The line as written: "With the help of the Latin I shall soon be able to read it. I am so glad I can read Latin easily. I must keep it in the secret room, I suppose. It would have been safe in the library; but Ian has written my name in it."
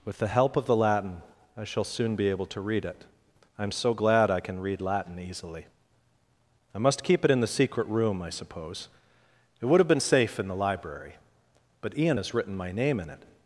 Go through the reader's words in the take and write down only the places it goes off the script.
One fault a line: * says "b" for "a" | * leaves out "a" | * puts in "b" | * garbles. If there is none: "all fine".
all fine